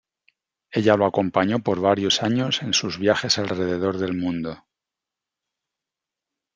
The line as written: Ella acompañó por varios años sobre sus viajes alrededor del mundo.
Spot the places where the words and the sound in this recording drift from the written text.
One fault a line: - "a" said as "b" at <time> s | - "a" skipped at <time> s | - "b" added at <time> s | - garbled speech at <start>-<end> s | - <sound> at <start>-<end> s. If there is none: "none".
- "lo" added at 0.9 s
- "sobre" said as "en" at 2.6 s